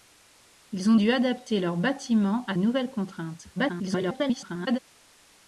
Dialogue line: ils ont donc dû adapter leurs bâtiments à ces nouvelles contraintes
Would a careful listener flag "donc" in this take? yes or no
yes